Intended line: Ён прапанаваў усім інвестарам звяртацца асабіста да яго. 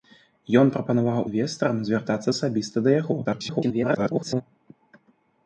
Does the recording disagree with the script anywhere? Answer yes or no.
yes